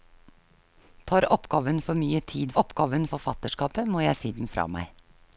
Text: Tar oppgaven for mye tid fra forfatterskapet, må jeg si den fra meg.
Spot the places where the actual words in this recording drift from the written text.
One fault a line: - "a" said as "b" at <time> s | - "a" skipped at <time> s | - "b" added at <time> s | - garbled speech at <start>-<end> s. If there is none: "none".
- "fra" said as "oppgaven" at 2.6 s